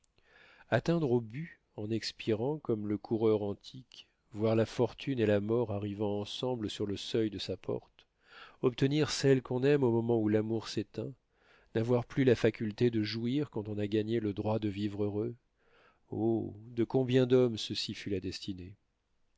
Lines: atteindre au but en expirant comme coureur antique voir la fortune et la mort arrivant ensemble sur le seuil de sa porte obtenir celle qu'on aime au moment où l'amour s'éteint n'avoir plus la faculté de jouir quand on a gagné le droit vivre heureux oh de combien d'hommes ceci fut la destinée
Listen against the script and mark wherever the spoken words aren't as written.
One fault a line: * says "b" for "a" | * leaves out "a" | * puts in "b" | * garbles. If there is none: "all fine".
* puts in "le"
* puts in "de"